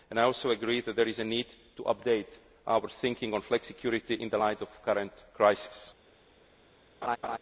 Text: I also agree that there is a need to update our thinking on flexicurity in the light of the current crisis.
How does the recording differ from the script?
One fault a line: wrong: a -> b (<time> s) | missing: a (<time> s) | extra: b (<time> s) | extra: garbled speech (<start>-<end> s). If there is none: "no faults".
no faults